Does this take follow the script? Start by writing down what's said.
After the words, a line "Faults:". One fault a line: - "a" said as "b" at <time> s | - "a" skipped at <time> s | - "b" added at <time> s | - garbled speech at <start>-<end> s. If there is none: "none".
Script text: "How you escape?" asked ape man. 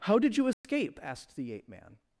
"How did you escape?" asked the ape man.
Faults:
- "did" added at 0.2 s
- "the" added at 1.4 s